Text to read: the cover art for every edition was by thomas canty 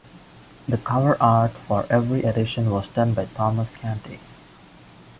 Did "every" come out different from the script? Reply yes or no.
no